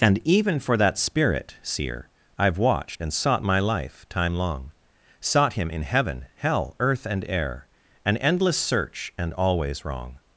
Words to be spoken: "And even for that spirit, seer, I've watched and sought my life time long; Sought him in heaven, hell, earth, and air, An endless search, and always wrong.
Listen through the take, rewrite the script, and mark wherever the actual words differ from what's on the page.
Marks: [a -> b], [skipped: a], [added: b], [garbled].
"And even for that spirit, seer, I've watched and sought my life time long; Sought him in heaven, hell, earth, and air, An endless search, and always wrong.